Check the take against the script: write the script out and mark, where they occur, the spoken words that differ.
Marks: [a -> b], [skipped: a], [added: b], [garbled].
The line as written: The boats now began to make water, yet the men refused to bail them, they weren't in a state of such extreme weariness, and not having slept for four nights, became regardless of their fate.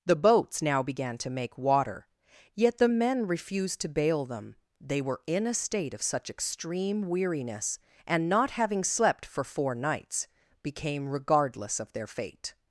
The boats now began to make water, yet the men refused to bail them, they [weren't -> were] in a state of such extreme weariness, and not having slept for four nights, became regardless of their fate.